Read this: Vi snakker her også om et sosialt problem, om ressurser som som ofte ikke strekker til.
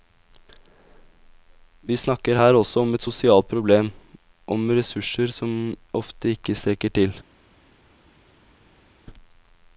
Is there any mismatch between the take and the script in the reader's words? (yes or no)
yes